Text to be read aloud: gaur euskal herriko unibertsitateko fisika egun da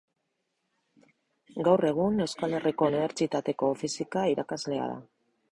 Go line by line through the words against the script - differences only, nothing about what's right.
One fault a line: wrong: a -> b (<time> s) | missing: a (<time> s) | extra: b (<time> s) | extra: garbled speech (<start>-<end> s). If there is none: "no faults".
extra: egun (1.9 s)
wrong: egun -> irakaslea (4.4 s)